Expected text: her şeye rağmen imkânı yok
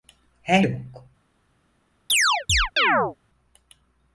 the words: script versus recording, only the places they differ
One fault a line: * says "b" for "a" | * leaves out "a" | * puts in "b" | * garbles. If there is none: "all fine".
* leaves out "şeye rağmen imkânı"